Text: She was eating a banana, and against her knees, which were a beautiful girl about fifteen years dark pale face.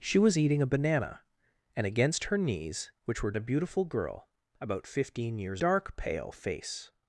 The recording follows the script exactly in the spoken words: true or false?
true